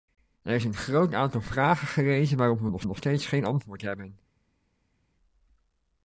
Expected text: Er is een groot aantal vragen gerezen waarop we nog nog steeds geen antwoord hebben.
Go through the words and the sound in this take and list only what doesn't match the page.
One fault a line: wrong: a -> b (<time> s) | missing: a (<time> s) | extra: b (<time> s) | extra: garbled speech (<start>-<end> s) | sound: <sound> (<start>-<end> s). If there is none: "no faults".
no faults